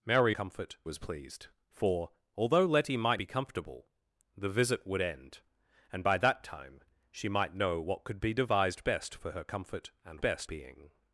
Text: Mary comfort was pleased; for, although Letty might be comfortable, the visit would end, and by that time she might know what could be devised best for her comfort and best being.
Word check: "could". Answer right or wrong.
right